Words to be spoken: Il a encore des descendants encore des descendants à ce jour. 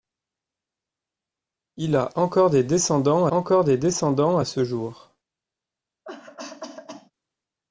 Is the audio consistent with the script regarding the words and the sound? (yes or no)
no